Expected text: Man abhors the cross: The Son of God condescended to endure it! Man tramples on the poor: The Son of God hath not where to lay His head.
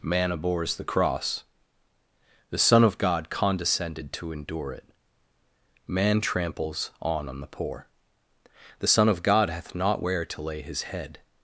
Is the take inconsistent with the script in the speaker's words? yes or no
yes